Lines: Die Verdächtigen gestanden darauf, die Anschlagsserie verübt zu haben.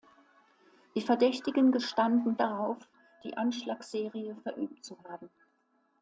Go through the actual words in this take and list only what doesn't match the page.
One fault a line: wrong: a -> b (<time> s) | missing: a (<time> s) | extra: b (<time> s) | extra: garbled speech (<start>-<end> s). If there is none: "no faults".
no faults